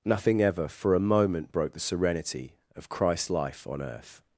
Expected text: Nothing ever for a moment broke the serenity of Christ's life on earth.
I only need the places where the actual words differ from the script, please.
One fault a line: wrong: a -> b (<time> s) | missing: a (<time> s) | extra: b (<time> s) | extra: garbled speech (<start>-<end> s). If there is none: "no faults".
no faults